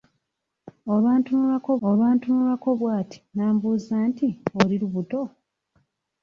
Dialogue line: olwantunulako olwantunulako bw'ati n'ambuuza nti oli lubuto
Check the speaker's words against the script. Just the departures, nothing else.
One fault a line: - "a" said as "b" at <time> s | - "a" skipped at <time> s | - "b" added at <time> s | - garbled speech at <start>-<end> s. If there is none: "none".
none